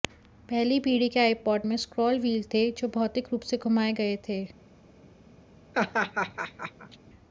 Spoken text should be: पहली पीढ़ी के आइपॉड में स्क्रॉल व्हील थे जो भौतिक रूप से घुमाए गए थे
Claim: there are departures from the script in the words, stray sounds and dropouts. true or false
true